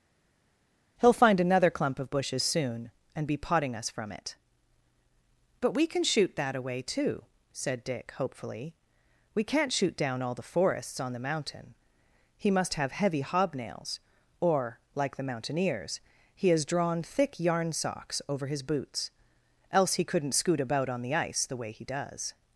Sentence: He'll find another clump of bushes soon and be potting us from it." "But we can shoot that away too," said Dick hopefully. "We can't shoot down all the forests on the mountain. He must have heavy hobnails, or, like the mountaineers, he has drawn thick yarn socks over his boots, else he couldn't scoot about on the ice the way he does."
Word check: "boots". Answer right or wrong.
right